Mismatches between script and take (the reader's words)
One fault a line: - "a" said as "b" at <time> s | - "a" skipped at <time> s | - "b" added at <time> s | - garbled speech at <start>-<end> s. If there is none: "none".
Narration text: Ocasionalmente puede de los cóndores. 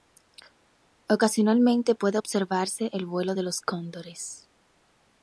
- "observarse el vuelo" added at 2.2 s